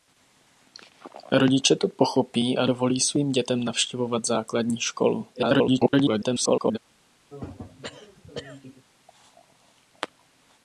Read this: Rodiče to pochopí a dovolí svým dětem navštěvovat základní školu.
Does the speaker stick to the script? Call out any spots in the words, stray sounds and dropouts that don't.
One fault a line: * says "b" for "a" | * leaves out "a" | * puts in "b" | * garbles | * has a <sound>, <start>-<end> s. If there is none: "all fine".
* garbles
* has a throat clearing, 7.3-8.9 s